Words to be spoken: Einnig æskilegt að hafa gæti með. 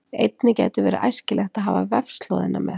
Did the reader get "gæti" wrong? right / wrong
wrong